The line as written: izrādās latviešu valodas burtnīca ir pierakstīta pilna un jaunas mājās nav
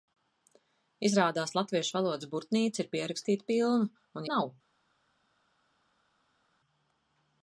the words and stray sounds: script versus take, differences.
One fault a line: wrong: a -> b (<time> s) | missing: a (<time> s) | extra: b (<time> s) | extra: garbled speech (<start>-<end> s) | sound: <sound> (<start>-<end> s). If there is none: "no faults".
missing: jaunas mājās (4.3 s)